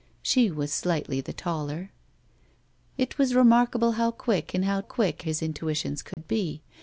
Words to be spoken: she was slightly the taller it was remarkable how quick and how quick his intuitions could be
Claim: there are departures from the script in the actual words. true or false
false